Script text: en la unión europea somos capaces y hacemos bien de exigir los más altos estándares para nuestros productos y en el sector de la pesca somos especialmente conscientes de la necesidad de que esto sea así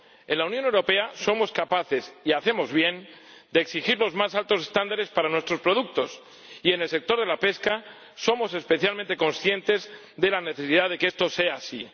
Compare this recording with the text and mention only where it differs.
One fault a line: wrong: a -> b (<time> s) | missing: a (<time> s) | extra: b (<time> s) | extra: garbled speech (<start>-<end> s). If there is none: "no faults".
no faults